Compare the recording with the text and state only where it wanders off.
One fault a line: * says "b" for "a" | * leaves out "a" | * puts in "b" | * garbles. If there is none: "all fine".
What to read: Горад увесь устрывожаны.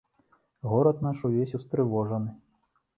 * puts in "наш"